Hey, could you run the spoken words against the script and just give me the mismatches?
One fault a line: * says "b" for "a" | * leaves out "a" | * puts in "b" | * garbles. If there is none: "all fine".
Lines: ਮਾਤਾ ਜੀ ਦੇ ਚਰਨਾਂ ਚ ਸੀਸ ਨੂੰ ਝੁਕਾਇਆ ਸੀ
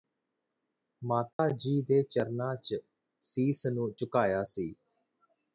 all fine